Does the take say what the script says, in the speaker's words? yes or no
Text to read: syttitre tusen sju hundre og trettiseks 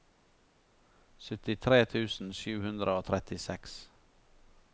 yes